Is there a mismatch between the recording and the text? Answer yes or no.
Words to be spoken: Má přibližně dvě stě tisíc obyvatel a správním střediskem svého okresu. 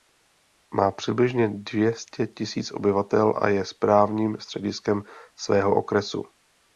yes